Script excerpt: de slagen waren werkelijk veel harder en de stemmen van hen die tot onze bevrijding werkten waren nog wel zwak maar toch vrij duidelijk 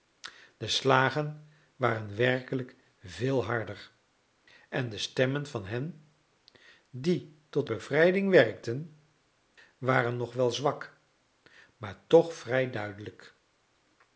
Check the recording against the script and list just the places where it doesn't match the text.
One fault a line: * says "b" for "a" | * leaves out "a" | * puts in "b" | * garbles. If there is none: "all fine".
* leaves out "onze"